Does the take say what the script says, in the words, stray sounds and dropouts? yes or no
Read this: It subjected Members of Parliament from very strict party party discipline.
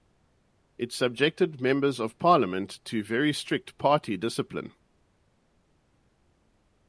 no